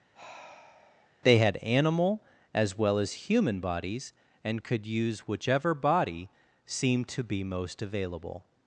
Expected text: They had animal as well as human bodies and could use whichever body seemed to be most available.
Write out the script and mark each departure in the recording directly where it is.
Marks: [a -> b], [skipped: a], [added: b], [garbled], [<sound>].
[sigh] They had animal as well as human bodies and could use whichever body seemed to be most available.